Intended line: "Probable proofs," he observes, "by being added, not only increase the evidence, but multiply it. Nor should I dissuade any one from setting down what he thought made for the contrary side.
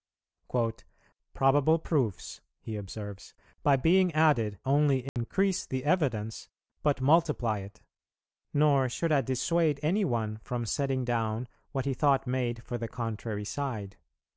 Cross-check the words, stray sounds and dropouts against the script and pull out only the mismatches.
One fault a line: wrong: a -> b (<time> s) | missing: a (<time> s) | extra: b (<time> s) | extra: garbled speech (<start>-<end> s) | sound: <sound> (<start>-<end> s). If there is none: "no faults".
missing: not (4.6 s)
sound: dropout (5.1-5.2 s)